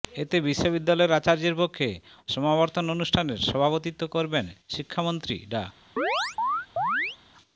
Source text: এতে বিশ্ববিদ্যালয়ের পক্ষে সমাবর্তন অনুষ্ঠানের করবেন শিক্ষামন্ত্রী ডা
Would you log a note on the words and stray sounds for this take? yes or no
yes